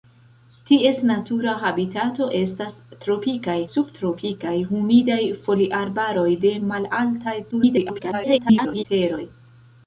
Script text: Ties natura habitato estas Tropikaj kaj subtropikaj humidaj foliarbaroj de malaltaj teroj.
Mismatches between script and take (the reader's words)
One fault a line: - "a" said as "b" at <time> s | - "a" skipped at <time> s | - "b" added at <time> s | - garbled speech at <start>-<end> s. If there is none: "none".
- "kaj" skipped at 3.6 s
- garbled speech at 7.5-8.9 s